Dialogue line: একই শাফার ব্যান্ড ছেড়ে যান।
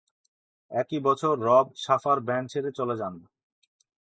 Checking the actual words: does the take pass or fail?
fail